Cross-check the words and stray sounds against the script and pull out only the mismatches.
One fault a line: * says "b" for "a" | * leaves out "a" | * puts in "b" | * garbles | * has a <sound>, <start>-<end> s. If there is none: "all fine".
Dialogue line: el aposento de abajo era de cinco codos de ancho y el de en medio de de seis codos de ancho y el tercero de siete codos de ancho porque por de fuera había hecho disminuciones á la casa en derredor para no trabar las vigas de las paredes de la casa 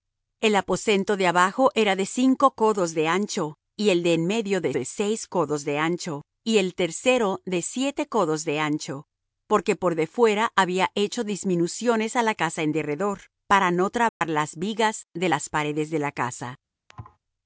* has a dropout, 14.1-14.2 s
* has a thud, 16.9-17.2 s